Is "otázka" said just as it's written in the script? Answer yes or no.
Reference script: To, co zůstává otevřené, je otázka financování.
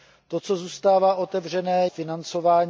no